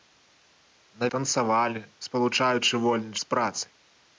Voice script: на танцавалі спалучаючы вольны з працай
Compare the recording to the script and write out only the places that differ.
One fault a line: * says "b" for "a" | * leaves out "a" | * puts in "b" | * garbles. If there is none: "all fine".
all fine